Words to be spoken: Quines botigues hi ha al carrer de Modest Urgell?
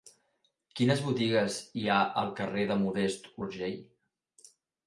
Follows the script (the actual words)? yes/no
yes